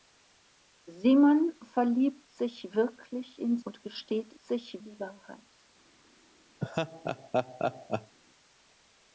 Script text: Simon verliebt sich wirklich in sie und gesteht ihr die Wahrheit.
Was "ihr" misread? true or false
true